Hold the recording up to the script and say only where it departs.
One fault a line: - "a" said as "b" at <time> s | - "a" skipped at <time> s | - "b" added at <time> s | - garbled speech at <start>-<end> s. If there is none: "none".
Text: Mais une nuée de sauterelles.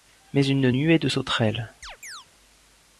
none